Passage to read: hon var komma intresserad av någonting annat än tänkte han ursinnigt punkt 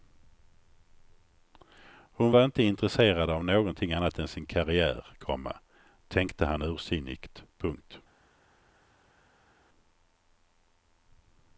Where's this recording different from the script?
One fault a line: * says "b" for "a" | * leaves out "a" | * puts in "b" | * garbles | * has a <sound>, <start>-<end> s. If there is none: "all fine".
* says "inte" for "komma"
* puts in "sin karriär komma"